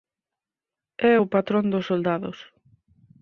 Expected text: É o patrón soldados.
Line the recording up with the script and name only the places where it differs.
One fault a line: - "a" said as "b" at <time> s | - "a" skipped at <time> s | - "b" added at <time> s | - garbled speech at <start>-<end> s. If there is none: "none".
- "dos" added at 1.7 s